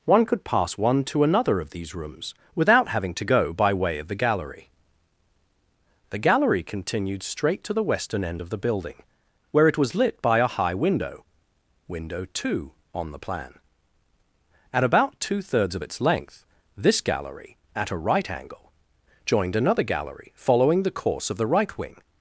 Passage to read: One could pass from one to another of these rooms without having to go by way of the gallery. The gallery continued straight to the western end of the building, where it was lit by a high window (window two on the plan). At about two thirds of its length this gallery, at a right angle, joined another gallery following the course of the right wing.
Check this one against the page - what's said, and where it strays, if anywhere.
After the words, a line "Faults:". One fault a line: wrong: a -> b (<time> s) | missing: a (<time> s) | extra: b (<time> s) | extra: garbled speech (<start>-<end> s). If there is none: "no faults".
One could pass one to another of these rooms without having to go by way of the gallery. The gallery continued straight to the western end of the building, where it was lit by a high window (window two on the plan). At about two thirds of its length this gallery, at a right angle, joined another gallery following the course of the right wing.
Faults:
missing: from (0.8 s)